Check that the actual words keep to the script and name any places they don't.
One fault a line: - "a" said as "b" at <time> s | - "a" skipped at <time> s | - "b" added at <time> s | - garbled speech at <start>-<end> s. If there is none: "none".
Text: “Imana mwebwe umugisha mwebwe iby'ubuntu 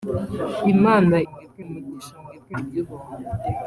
none